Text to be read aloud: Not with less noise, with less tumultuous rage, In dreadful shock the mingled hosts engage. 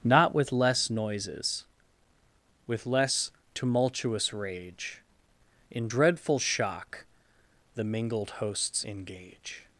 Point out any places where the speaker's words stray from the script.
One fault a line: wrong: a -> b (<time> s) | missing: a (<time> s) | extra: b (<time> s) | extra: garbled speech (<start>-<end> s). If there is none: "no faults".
wrong: noise -> noises (0.9 s)